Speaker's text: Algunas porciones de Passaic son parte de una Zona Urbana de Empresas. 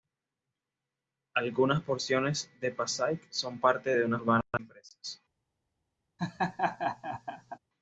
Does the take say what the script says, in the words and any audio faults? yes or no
no